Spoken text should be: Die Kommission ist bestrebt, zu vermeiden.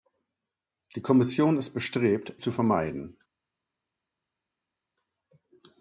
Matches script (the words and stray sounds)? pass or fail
pass